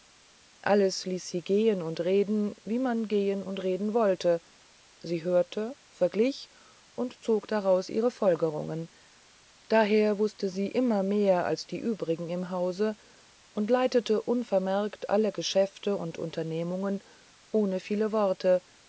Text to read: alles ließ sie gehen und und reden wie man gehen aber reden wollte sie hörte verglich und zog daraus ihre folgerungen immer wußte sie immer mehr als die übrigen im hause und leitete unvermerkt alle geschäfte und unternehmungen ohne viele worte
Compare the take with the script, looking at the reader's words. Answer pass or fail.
fail